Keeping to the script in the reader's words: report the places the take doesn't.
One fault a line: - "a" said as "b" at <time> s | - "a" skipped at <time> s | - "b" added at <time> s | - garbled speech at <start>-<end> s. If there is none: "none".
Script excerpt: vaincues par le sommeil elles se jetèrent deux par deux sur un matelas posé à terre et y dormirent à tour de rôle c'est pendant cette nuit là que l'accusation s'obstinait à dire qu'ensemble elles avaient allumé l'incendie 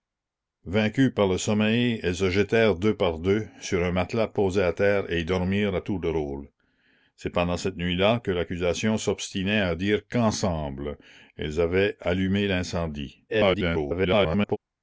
- garbled speech at 13.3-14.6 s